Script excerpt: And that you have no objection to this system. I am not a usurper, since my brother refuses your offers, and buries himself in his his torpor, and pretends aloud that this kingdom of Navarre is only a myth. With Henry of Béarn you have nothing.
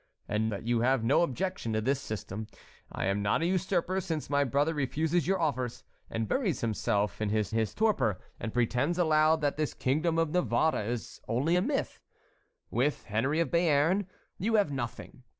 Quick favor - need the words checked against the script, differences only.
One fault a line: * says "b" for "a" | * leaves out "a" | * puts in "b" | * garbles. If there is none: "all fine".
all fine